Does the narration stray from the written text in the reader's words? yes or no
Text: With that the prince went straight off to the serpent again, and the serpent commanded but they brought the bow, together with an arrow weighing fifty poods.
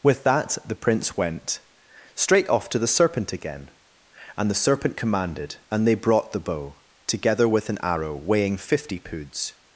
yes